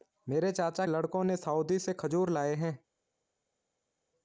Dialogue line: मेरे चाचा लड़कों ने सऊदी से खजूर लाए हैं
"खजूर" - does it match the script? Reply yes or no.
yes